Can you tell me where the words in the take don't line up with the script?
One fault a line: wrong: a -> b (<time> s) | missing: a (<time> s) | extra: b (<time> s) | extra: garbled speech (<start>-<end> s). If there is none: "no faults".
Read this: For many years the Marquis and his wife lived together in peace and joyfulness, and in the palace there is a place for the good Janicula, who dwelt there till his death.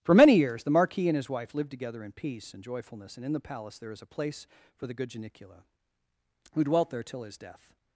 no faults